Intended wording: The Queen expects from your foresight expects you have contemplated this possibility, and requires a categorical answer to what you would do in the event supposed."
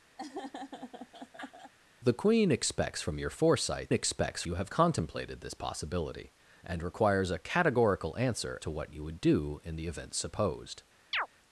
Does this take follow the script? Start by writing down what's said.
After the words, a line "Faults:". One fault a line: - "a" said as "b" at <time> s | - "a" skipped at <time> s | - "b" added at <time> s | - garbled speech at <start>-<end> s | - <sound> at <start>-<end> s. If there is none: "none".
The Queen expects from your foresight expects you have contemplated this possibility, and requires a categorical answer to what you would do in the event supposed."
Faults:
- laugh at 0.2-1.7 s
- chirp at 11.1-11.3 s